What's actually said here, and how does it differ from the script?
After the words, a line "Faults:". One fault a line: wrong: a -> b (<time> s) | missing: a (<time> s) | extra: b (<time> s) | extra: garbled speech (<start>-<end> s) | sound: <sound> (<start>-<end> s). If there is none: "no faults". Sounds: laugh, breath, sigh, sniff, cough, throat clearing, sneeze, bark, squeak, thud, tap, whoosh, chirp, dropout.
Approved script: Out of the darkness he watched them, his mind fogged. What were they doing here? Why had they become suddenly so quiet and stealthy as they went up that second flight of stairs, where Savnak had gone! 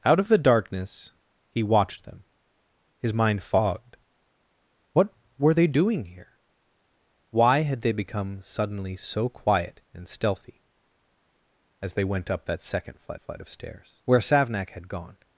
Out of the darkness he watched them, his mind fogged. What were they doing here? Why had they become suddenly so quiet and stealthy as they went up that second flight flight of stairs, where Savnak had gone!
Faults:
extra: flight (13.2 s)